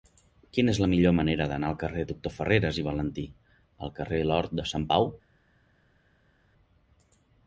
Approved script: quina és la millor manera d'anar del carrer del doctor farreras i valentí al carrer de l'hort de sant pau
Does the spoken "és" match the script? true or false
true